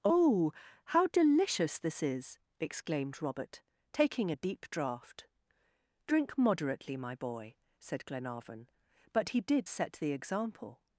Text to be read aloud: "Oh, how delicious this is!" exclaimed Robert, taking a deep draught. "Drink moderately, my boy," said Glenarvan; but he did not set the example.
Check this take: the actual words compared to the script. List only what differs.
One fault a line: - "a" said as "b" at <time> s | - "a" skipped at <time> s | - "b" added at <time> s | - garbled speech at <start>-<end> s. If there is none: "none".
- "not" skipped at 9.7 s